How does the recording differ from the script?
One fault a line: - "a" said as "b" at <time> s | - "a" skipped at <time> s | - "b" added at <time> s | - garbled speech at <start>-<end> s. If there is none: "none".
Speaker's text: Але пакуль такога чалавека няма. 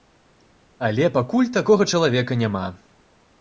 none